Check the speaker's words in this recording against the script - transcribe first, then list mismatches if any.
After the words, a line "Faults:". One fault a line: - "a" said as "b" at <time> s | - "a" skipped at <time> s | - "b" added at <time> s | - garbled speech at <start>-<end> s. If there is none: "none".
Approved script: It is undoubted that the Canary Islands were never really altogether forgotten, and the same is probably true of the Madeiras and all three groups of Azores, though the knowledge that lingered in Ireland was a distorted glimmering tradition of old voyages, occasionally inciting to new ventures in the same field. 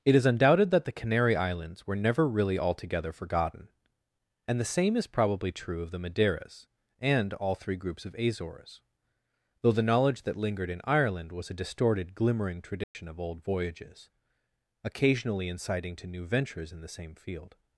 It is undoubted that the Canary Islands were never really altogether forgotten, and the same is probably true of the Madeiras and all three groups of Azores, though the knowledge that lingered in Ireland was a distorted glimmering tradition of old voyages, occasionally inciting to new ventures in the same field.
Faults:
none